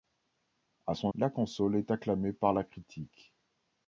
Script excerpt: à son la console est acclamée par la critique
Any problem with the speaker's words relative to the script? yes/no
no